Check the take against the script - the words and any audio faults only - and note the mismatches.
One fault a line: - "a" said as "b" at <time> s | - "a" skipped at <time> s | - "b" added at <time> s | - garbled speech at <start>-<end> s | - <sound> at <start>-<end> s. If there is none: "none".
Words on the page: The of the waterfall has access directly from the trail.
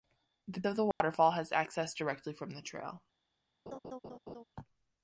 - dropout at 0.9-1.0 s
- laugh at 3.7-4.4 s